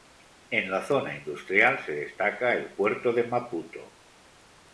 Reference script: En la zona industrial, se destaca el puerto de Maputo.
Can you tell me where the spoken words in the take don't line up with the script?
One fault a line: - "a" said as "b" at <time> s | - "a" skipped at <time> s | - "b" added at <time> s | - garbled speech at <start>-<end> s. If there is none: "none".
none